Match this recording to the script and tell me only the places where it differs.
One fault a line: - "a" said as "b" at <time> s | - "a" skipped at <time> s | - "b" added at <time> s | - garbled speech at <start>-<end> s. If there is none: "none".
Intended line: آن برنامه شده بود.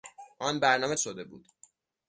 none